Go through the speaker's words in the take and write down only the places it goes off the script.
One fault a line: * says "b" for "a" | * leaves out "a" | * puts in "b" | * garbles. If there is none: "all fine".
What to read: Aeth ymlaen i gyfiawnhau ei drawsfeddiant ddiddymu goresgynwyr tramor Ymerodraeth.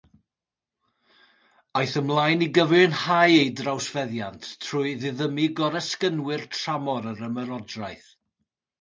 * puts in "trwy"
* puts in "yr"